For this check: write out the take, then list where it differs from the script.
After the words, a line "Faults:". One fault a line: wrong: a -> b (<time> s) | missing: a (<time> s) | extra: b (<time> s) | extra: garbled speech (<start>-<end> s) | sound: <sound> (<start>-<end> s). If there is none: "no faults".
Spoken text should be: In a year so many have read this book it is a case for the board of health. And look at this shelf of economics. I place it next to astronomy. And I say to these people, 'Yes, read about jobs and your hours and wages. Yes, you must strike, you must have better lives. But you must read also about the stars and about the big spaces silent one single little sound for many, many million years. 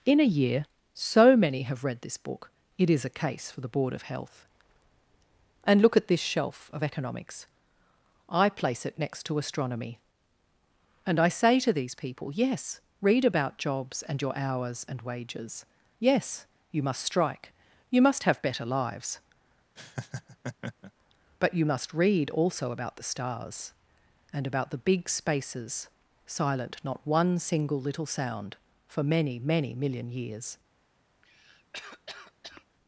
In a year so many have read this book it is a case for the board of health. And look at this shelf of economics. I place it next to astronomy. And I say to these people, 'Yes, read about jobs and your hours and wages. Yes, you must strike, you must have better lives. But you must read also about the stars and about the big spaces silent not one single little sound for many, many million years.
Faults:
sound: laugh (19.8-20.9 s)
extra: not (26.8 s)
sound: cough (31.2-32.6 s)